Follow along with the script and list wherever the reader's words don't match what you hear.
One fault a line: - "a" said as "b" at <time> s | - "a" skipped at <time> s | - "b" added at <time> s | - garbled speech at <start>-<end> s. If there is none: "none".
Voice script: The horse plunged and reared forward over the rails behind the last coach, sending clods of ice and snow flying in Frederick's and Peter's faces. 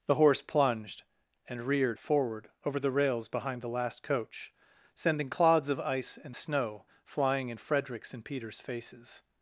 none